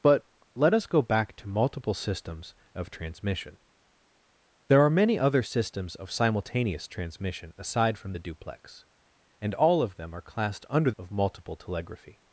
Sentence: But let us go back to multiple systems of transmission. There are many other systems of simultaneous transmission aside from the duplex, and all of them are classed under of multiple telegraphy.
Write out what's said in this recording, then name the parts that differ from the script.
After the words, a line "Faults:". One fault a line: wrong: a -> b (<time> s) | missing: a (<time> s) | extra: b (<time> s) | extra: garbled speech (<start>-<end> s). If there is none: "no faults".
But let us go back to multiple systems of transmission. There are many other systems of simultaneous transmission aside from the duplex, and all of them are classed under of multiple telegraphy.
Faults:
no faults